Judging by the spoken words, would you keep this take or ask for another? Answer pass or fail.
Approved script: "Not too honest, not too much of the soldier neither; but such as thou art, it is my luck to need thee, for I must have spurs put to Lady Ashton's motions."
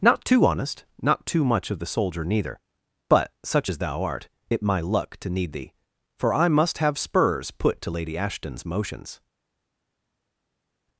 fail